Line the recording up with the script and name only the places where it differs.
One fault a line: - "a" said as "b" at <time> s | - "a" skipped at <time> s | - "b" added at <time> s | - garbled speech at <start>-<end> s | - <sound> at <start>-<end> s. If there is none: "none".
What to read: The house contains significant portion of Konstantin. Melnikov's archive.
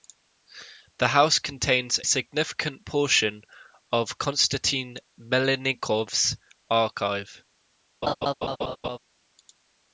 - laugh at 8.0-9.0 s